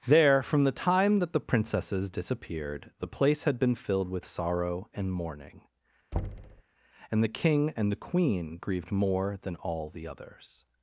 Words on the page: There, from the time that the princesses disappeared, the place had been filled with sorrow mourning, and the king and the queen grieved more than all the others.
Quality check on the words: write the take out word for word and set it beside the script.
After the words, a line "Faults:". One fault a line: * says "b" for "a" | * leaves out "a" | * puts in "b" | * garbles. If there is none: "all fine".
There, from the time that the princesses disappeared, the place had been filled with sorrow and mourning, and the king and the queen grieved more than all the others.
Faults:
* puts in "and"